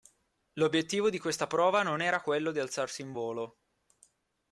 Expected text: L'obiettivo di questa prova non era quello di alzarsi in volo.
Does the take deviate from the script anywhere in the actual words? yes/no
no